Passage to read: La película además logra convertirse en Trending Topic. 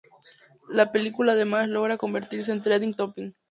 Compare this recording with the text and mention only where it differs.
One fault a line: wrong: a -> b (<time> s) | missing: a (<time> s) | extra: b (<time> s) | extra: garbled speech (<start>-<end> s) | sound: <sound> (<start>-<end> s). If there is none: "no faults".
no faults